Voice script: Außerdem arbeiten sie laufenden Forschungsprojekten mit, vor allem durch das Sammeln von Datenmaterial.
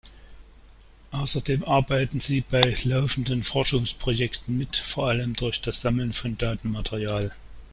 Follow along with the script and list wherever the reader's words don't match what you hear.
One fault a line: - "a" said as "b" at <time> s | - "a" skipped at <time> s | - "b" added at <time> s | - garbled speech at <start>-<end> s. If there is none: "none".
- "bei" added at 2.4 s